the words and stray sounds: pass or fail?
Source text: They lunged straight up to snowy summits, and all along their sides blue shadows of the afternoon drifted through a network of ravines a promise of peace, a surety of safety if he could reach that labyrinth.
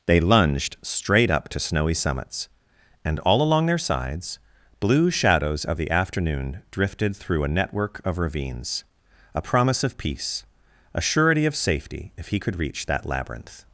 pass